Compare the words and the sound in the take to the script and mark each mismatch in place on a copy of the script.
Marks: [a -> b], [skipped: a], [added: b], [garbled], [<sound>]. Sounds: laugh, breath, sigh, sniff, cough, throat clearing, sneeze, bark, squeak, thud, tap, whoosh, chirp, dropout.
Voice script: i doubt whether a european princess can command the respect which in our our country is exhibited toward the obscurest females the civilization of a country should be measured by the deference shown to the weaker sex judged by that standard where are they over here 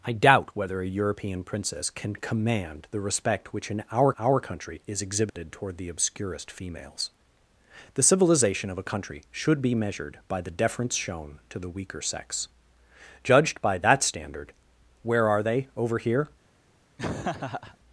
i doubt whether a european princess can command the respect which in our our country is exhibited [dropout] toward the obscurest females the civilization of a country should be measured by the deference shown to the weaker sex judged by that standard where are they over here [laugh]